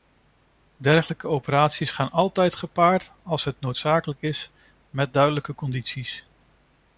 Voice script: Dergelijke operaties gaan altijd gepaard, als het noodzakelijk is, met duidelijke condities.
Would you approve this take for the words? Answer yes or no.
yes